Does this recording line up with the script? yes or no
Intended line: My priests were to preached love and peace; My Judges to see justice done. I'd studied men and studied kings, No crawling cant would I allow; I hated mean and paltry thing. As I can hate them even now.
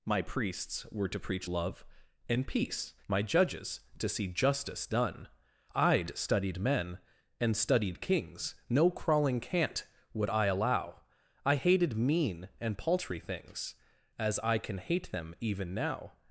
no